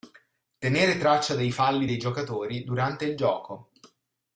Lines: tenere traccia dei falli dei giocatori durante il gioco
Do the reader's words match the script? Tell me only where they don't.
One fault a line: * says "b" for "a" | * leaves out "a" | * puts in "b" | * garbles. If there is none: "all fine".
all fine